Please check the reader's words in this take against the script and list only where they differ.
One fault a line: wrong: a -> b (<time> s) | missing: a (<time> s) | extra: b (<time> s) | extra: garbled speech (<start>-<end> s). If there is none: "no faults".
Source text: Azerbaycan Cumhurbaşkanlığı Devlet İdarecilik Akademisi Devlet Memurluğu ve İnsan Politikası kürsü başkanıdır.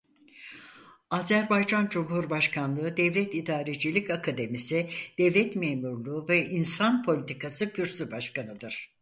no faults